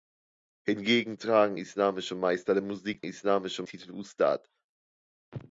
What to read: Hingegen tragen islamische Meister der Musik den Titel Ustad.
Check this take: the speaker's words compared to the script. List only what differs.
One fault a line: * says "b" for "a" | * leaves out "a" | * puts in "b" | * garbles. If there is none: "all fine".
* says "islamische" for "den"